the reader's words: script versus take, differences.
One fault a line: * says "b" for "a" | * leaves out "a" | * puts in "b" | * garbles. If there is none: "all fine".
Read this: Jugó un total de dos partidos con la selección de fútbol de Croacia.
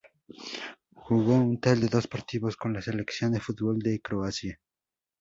all fine